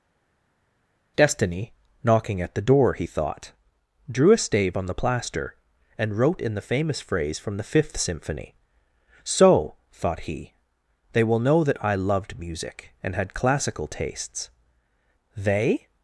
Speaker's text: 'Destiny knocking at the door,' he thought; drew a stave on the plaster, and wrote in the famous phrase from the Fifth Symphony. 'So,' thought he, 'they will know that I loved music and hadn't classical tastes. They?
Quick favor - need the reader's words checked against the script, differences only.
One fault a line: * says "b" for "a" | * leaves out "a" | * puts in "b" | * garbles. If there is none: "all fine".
* says "had" for "hadn't"